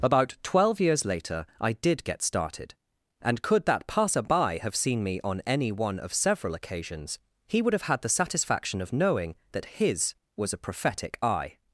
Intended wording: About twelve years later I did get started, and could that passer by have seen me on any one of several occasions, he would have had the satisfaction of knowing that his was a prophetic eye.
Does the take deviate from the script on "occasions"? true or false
false